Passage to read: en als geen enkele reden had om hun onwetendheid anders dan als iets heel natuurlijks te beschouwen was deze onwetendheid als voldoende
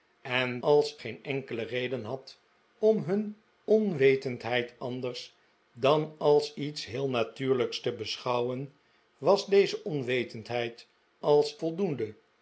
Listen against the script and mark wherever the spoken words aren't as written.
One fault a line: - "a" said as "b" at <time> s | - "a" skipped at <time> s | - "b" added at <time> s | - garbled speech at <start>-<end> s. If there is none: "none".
none